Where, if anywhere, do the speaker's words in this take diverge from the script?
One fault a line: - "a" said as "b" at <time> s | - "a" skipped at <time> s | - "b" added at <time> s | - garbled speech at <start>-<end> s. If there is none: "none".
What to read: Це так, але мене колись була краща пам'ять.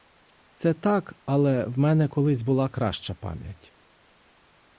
- "в" added at 1.6 s